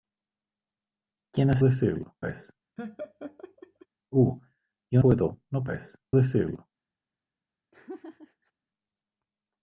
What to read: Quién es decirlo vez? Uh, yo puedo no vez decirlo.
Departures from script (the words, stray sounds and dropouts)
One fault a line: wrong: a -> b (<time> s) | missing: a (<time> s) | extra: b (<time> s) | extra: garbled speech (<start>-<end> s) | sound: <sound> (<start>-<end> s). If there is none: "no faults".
sound: laugh (2.8-3.9 s)
sound: laugh (7.7-8.5 s)